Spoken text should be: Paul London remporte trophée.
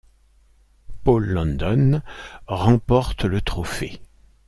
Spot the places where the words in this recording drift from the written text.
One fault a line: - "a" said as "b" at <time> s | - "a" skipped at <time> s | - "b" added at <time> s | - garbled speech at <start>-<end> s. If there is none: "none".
- "le" added at 3.3 s